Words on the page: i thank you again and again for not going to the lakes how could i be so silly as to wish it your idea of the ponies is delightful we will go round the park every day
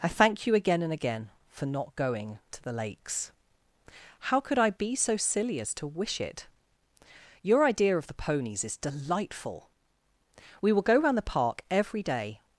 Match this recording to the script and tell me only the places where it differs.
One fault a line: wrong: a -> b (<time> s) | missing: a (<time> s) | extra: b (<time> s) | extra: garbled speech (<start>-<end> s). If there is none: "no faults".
no faults